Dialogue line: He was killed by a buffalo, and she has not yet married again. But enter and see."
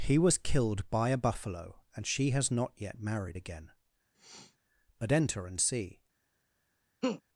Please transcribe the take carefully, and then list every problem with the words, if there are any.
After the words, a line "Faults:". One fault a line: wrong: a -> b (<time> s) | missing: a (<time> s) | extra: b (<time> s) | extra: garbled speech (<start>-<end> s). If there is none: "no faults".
He was killed by a buffalo, and she has not yet married again. But enter and see."
Faults:
no faults